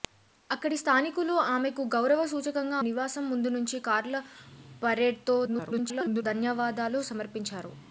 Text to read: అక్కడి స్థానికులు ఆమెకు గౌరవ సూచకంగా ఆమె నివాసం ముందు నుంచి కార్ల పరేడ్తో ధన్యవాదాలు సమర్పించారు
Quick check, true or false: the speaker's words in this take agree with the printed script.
false